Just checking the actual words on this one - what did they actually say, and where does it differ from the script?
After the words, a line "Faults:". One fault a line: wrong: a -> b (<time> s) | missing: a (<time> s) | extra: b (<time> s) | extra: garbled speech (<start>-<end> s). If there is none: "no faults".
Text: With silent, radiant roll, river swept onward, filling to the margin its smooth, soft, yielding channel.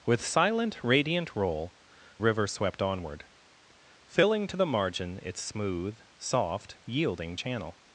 With silent, radiant roll, river swept onward, filling to the margin its smooth, soft, yielding channel.
Faults:
no faults